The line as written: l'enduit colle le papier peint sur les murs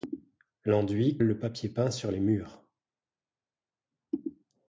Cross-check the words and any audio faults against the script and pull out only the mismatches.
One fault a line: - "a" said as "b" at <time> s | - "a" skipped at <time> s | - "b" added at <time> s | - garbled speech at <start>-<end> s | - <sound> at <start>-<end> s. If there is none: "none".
- "colle" skipped at 1.2 s